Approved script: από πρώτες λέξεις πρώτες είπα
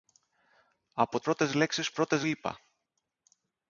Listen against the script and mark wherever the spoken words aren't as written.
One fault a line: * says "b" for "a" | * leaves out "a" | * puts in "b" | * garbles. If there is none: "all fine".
all fine